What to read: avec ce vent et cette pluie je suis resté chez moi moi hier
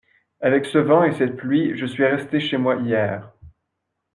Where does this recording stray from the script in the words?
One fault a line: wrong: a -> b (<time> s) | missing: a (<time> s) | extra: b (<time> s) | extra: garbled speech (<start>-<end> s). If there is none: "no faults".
missing: moi (2.8 s)